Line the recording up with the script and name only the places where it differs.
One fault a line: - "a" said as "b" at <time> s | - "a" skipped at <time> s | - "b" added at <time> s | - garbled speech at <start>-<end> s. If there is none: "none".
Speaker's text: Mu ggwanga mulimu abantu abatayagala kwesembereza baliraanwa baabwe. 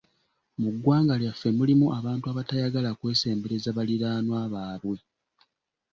- "lyaffe" added at 1.2 s